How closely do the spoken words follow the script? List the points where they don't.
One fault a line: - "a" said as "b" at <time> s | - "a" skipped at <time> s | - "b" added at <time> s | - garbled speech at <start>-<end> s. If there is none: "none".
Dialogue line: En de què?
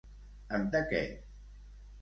none